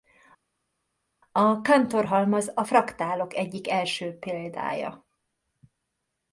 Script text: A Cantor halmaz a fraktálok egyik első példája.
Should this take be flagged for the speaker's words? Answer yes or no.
no